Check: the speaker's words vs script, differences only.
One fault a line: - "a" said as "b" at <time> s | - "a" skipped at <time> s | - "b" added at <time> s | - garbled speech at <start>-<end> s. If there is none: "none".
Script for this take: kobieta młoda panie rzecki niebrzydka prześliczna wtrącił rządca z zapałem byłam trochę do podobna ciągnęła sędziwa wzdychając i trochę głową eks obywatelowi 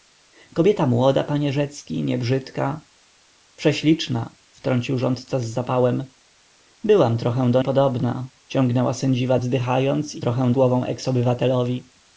none